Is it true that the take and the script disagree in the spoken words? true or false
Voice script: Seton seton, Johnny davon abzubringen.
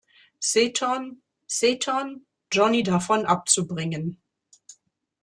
false